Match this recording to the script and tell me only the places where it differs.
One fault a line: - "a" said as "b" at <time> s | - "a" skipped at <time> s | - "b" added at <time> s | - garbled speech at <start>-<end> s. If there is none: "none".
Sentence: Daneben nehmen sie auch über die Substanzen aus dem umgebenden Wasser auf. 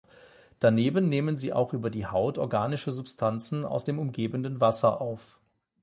- "Haut organische" added at 2.1 s